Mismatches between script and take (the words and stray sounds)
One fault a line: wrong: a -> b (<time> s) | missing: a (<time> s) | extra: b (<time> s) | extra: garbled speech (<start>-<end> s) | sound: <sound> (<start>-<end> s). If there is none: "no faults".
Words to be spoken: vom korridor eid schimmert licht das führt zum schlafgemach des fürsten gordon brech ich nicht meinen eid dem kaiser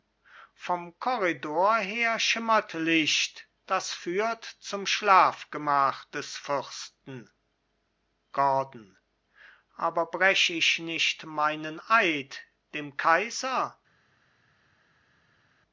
wrong: eid -> her (1.8 s)
extra: aber (9.8 s)